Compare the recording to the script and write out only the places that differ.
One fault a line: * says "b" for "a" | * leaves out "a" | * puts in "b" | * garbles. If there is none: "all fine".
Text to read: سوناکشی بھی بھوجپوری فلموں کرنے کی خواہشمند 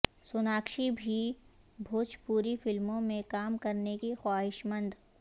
* puts in "میں کام"